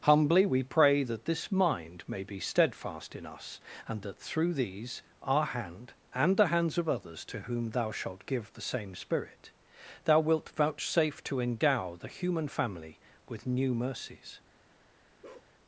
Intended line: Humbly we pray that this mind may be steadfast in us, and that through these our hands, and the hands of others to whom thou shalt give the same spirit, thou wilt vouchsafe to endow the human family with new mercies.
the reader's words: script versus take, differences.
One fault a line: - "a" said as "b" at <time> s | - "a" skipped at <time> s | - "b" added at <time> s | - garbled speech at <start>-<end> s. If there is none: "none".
- "hands" said as "hand" at 5.5 s